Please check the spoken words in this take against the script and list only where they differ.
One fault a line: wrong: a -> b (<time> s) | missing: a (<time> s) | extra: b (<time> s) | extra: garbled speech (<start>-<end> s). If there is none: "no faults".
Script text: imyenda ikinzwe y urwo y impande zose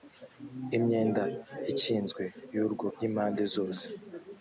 no faults